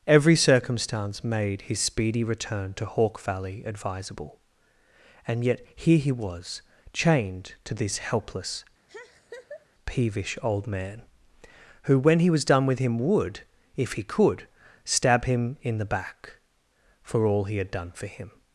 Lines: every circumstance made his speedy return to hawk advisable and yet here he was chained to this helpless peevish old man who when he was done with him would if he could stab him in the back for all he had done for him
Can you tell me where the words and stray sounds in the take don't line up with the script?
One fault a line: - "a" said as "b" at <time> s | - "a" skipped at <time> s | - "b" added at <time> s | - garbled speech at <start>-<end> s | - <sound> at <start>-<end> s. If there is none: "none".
- "valley" added at 3.2 s
- laugh at 8.9-9.7 s